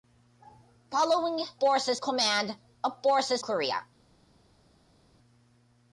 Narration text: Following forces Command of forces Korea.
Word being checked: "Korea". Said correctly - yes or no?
yes